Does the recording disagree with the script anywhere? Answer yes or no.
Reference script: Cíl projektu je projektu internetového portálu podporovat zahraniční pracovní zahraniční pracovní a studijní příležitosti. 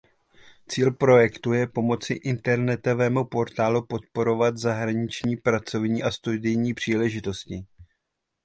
yes